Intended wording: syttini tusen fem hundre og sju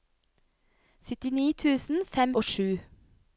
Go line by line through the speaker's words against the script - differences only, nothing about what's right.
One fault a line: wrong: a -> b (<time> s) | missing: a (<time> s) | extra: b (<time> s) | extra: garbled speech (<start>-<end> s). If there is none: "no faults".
missing: hundre (2.4 s)